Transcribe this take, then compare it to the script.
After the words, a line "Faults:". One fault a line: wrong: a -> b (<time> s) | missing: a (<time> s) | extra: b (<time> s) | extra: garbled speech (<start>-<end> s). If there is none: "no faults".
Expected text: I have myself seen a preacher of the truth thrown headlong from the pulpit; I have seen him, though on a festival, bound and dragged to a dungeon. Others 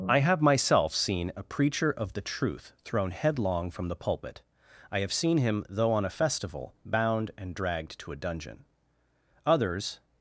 I have myself seen a preacher of the truth thrown headlong from the pulpit; I have seen him, though on a festival, bound and dragged to a dungeon. Others
Faults:
no faults